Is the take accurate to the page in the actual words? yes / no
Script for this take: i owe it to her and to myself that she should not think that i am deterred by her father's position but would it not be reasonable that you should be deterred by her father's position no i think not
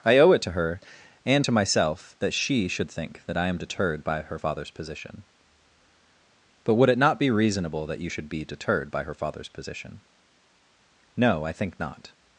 no